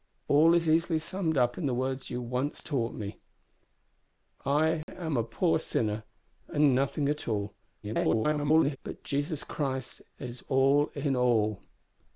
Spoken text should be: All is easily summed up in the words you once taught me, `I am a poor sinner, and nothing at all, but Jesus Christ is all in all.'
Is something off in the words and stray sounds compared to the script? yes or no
yes